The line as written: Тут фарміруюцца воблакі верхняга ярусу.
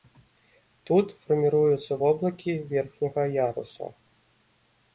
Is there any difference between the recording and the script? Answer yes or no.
no